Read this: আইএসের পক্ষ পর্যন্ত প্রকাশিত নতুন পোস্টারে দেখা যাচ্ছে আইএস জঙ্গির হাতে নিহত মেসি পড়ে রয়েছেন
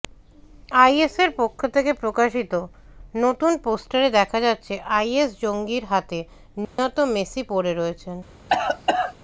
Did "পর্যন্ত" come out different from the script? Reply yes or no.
yes